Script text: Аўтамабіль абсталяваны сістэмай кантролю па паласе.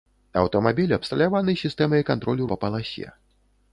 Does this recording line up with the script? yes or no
yes